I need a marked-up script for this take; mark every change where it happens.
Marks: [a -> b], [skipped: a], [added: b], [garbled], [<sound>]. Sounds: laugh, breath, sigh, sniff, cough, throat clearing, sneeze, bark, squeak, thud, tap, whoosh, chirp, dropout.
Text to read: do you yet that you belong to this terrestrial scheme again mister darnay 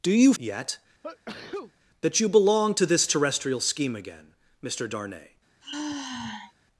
do you yet [sneeze] that you belong to this terrestrial scheme again mister darnay [sigh]